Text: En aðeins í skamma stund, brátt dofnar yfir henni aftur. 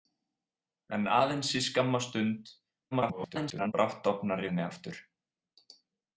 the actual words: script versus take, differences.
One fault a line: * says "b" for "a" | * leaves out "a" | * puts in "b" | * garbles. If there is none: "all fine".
* garbles
* leaves out "yfir"